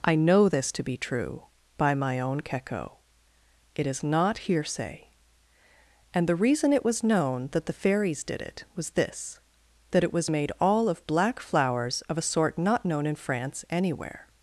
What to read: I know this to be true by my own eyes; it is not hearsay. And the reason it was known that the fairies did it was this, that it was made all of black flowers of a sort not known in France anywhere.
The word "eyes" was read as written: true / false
false